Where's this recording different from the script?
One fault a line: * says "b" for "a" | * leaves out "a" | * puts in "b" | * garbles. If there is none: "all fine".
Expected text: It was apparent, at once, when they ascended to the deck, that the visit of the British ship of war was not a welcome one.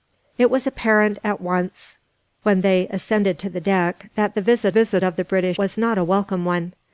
* puts in "visit"
* leaves out "ship of war"